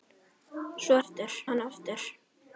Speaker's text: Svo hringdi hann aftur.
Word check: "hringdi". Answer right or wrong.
wrong